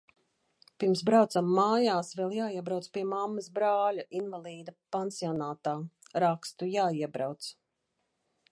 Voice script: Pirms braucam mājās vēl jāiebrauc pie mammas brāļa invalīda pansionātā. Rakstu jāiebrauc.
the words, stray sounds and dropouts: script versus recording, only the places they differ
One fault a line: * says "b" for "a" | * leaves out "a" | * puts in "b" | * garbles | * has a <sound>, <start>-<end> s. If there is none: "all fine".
all fine